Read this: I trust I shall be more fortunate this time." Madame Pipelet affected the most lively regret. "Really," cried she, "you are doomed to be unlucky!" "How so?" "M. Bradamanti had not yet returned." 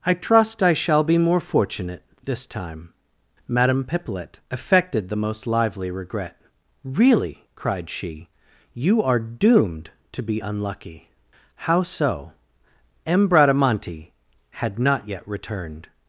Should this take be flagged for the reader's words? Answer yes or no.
no